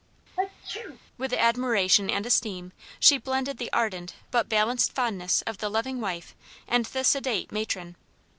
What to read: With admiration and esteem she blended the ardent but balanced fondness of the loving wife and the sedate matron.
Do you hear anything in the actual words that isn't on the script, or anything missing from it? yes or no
no